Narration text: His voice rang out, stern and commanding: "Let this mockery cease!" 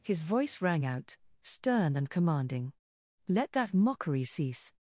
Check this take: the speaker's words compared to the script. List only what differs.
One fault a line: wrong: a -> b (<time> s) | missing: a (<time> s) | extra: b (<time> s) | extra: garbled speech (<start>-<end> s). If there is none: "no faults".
wrong: this -> that (3.5 s)